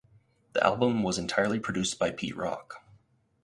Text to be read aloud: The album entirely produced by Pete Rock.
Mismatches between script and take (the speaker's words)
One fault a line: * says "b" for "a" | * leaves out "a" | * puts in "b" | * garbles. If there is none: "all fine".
* puts in "was"